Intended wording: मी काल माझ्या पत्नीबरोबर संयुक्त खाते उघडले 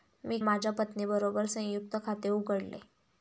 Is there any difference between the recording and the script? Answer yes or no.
yes